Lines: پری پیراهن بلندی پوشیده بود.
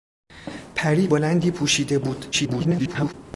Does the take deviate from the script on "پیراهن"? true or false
true